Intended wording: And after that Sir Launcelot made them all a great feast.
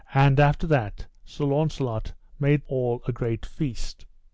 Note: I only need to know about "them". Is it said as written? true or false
false